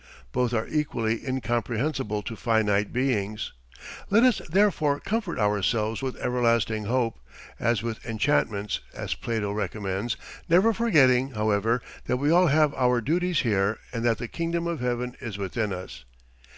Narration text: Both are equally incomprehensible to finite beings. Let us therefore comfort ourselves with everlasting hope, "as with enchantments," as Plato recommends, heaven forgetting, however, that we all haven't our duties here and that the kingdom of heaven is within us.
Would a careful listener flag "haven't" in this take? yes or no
yes